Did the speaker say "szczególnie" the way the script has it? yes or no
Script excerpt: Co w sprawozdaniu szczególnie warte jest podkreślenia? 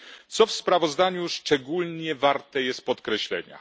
yes